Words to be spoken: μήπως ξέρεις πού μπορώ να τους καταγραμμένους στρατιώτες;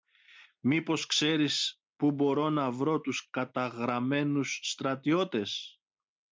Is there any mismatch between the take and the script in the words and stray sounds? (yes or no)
yes